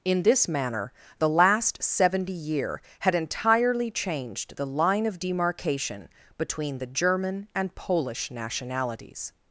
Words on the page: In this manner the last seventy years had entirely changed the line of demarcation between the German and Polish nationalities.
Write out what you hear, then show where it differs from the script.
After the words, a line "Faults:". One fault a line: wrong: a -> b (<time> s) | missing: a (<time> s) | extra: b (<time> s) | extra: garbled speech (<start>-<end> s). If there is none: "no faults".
In this manner the last seventy year had entirely changed the line of demarcation between the German and Polish nationalities.
Faults:
wrong: years -> year (2.3 s)